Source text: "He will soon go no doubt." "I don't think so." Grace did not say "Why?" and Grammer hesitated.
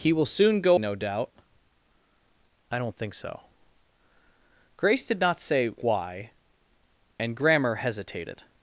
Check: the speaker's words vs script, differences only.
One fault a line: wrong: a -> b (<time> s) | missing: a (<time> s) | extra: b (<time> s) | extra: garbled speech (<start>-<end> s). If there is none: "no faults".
no faults